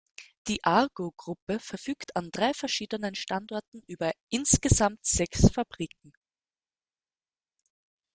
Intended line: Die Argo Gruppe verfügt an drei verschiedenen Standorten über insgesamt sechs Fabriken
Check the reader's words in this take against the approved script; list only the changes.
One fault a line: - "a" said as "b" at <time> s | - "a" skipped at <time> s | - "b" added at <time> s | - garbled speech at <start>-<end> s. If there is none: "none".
none